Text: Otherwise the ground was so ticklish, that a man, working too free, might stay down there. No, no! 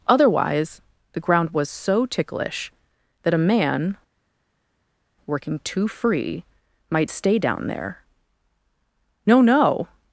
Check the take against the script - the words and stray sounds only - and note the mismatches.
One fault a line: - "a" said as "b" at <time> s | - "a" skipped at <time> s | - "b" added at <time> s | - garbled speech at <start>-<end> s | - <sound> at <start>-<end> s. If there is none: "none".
none